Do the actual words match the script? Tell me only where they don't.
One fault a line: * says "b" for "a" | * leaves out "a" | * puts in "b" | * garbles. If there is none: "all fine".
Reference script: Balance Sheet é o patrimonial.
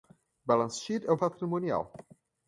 all fine